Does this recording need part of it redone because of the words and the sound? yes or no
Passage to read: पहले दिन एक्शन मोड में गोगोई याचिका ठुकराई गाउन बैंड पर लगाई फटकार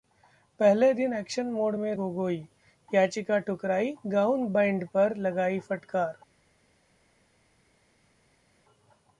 no